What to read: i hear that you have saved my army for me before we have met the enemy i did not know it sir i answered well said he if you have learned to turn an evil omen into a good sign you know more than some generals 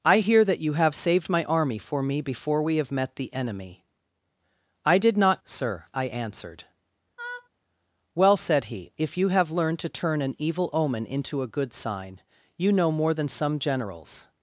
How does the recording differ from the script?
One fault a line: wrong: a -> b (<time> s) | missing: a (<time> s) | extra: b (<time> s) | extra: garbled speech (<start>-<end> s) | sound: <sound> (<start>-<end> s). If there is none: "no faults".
missing: know it (5.4 s)
sound: laugh (7.2-7.5 s)